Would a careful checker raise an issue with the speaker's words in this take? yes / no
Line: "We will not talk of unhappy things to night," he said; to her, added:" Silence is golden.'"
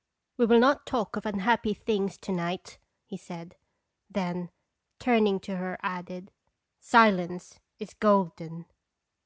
yes